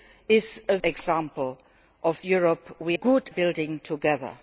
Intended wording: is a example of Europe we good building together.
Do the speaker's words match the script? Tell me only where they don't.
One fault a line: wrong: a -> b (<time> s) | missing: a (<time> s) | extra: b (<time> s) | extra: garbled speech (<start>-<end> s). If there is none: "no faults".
no faults